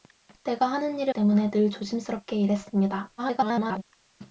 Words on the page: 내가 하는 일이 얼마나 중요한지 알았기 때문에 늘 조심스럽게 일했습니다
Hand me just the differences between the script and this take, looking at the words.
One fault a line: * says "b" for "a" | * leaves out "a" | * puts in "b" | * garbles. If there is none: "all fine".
* leaves out "얼마나 중요한지 알았기"
* garbles